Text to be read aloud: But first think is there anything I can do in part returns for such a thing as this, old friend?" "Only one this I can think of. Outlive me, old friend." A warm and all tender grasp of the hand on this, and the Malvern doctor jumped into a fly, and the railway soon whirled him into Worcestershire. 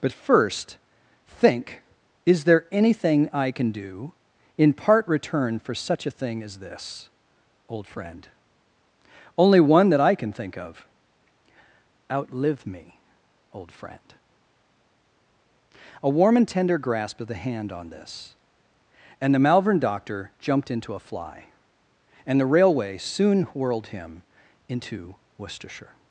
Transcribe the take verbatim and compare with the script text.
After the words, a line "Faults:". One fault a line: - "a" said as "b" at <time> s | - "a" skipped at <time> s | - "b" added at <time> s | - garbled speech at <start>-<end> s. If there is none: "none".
But first think is there anything I can do in part return for such a thing as this, old friend?" "Only one that I can think of. Outlive me, old friend." A warm and tender grasp of the hand on this, and the Malvern doctor jumped into a fly, and the railway soon whirled him into Worcestershire.
Faults:
- "returns" said as "return" at 5.1 s
- "this" said as "that" at 9.9 s
- "all" skipped at 16.5 s